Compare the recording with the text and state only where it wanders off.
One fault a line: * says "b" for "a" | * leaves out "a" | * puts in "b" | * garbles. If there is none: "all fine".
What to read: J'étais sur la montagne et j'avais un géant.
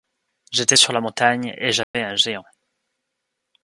all fine